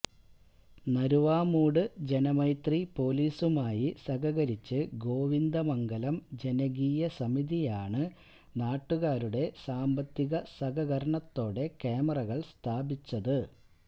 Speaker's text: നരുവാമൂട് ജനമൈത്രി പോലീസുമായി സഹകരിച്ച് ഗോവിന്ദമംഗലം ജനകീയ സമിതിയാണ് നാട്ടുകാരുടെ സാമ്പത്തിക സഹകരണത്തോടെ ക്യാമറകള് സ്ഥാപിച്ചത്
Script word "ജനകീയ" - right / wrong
right